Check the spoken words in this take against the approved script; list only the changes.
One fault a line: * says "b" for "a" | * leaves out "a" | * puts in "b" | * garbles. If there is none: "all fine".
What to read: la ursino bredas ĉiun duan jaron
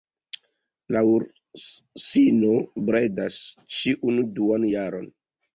all fine